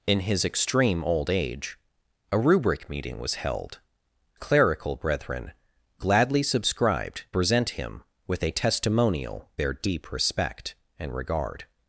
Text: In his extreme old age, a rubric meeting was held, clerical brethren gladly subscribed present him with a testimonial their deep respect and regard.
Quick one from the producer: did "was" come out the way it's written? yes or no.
yes